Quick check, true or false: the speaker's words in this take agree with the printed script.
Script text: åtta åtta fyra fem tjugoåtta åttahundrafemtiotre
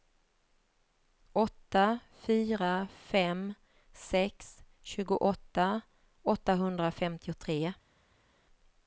false